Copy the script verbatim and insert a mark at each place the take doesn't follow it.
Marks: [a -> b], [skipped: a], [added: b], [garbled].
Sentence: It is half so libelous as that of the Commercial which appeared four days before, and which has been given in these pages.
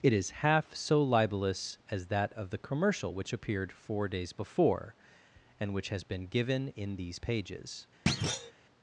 It is half so libelous as that of the Commercial which appeared four days before, and which has been given in these pages.